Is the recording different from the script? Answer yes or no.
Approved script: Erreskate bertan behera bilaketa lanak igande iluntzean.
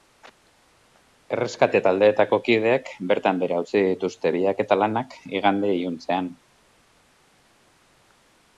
yes